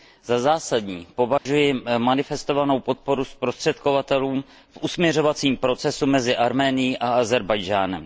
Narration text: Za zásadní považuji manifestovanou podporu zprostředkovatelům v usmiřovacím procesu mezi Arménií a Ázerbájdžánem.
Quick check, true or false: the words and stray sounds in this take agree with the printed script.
false